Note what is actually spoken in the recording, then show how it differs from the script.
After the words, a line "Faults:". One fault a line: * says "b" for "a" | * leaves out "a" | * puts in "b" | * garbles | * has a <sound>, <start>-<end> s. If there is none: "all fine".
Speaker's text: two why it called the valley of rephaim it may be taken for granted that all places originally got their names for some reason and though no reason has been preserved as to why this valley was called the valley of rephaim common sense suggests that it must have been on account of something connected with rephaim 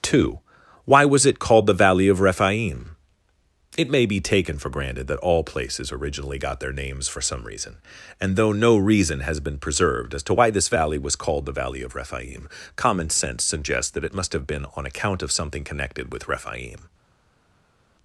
two why was it called the valley of rephaim it may be taken for granted that all places originally got their names for some reason and though no reason has been preserved as to why this valley was called the valley of rephaim common sense suggests that it must have been on account of something connected with rephaim
Faults:
* puts in "was"